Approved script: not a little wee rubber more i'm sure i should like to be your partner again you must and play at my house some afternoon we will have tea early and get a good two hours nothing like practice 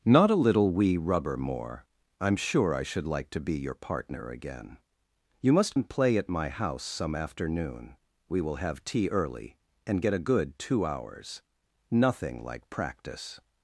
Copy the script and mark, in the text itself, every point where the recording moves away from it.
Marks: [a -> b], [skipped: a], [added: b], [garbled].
not a little wee rubber more i'm sure i should like to be your partner again you must and play at my house some afternoon we will have tea early and get a good two hours nothing like practice